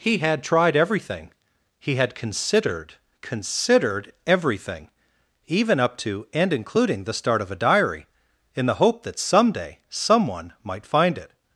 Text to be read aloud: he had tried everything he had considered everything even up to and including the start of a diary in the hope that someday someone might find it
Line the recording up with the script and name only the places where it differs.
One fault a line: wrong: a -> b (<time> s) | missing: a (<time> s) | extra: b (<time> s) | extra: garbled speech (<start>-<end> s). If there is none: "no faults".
extra: considered (3.2 s)